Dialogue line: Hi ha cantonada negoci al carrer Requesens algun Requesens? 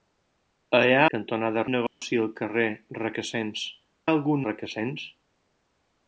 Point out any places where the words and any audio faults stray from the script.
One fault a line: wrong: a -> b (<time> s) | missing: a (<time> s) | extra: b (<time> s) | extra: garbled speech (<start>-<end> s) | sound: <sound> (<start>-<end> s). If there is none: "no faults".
sound: dropout (1.9-2.0 s)